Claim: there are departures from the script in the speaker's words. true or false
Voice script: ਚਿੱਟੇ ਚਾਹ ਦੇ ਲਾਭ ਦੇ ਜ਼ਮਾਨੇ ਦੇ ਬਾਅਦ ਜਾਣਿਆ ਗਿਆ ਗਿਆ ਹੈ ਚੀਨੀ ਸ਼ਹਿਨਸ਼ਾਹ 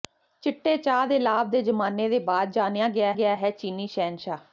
false